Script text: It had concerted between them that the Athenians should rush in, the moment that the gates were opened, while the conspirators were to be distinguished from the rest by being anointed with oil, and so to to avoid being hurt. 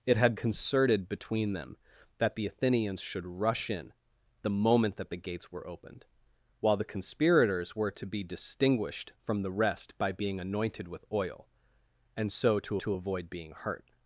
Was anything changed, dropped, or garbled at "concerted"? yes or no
no